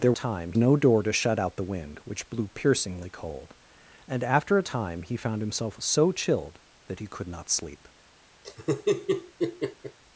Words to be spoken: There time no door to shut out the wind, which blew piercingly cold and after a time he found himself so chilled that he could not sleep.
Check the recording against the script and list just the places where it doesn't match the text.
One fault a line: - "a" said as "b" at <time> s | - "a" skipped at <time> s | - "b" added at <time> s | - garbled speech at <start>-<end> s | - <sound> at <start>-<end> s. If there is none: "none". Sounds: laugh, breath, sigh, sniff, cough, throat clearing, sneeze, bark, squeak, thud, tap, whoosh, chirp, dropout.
- laugh at 8.4-10.0 s